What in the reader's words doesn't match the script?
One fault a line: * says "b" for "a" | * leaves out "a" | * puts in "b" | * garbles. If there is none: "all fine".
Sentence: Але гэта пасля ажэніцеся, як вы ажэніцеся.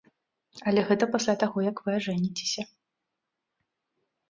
* says "таго" for "ажэніцеся"